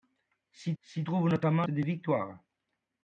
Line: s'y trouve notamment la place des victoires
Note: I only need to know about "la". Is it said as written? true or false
false